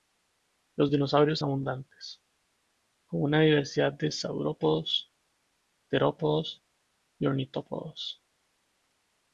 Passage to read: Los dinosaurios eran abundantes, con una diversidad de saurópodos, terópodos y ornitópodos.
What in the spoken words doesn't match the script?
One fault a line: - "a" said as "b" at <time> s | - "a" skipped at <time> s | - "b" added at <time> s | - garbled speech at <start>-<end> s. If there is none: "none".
- "eran" skipped at 1.4 s